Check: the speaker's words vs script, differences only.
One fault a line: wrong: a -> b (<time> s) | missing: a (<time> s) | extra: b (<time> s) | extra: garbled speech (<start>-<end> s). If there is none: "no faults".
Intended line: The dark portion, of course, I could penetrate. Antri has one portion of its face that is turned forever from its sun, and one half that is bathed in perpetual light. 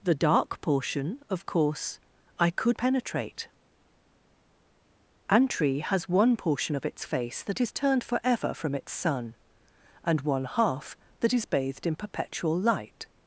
no faults